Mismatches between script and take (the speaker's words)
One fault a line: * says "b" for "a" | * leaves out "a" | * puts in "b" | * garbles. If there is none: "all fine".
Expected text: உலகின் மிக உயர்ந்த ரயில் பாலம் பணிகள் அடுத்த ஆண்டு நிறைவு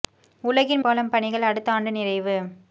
* leaves out "மிக உயர்ந்த ரயில்"